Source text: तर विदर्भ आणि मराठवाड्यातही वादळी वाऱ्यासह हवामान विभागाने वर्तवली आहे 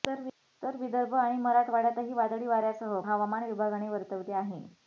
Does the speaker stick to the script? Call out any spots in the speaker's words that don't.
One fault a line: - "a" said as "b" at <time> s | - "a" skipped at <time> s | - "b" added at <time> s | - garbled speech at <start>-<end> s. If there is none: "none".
none